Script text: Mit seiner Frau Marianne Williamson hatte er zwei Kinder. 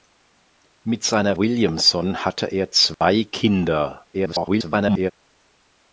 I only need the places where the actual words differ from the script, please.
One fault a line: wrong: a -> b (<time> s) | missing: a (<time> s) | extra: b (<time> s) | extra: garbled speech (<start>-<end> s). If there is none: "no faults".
missing: Frau Marianne (1.4 s)
extra: garbled speech (4.1-5.1 s)